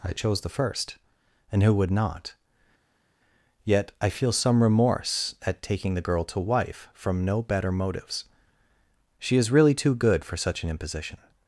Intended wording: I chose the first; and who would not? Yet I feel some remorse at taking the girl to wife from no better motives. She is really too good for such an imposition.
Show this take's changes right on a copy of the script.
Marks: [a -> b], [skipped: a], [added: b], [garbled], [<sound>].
I chose the first; and who would not? Yet I feel some remorse at taking the girl to wife from no better motives. She is really too good for such an imposition.